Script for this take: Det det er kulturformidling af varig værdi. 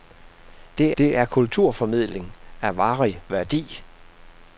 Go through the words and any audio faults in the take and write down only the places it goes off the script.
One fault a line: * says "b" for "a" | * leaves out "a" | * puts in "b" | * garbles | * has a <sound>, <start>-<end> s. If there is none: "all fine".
all fine